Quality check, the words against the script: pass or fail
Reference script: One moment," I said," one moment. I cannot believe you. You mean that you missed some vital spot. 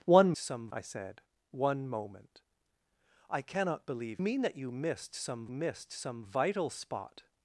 fail